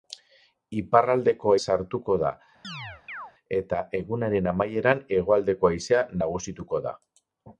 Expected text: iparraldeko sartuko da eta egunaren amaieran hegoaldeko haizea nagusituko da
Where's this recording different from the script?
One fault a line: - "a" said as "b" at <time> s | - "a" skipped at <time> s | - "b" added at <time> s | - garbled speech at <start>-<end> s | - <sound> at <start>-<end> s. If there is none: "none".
- chirp at 2.6-3.3 s